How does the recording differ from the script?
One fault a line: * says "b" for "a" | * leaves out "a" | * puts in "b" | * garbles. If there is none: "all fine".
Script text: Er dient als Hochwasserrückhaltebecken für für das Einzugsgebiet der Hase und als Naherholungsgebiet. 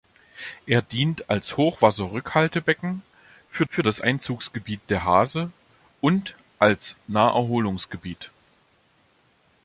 all fine